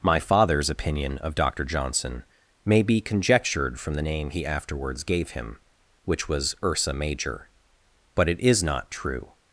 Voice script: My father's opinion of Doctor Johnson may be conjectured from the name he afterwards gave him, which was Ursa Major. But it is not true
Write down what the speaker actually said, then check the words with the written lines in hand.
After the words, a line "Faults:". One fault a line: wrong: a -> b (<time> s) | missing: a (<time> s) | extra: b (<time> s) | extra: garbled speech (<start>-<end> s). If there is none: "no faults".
My father's opinion of Doctor Johnson may be conjectured from the name he afterwards gave him, which was Ursa Major. But it is not true
Faults:
no faults